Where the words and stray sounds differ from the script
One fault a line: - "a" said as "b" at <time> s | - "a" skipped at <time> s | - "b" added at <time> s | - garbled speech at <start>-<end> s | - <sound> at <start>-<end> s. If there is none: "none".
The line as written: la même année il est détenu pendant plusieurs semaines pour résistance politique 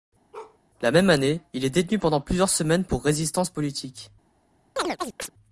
- bark at 0.3-0.6 s
- chirp at 4.8-5.3 s